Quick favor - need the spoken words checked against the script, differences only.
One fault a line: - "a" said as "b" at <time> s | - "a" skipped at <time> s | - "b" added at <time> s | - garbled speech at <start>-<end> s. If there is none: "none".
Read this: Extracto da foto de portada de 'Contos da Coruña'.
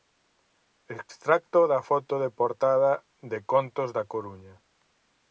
none